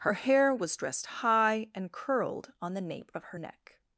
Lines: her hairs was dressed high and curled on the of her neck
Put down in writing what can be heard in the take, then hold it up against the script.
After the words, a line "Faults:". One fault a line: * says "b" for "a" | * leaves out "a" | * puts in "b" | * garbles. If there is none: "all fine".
her hair was dressed high and curled on the nape of her neck
Faults:
* says "hair" for "hairs"
* puts in "nape"